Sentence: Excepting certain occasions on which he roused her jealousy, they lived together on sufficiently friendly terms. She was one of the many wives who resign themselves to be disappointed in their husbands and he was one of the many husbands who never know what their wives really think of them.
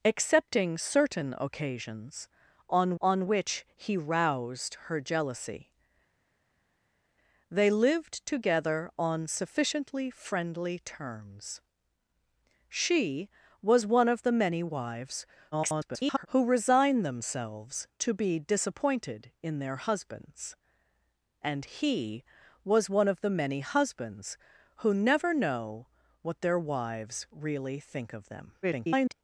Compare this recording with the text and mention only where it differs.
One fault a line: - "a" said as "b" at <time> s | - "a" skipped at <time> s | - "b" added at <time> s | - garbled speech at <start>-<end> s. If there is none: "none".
- "on" added at 3.0 s
- garbled speech at 15.5-16.3 s
- garbled speech at 28.6-29.1 s